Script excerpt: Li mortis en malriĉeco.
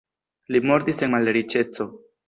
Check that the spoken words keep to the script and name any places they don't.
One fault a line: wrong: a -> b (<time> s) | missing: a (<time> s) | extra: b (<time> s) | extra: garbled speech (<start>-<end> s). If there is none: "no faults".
no faults